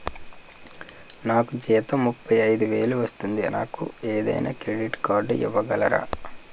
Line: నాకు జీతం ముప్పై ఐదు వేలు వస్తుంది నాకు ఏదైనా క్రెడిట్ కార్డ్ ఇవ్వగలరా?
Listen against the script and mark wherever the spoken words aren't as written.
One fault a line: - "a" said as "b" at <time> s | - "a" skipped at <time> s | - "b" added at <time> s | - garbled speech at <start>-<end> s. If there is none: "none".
none